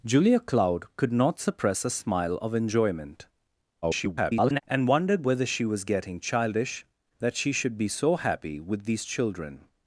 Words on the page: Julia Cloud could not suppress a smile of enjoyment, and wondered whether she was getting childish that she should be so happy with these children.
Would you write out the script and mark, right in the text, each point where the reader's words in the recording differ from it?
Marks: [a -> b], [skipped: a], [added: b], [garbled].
Julia Cloud could not suppress a smile of enjoyment, [garbled] and wondered whether she was getting childish that she should be so happy with these children.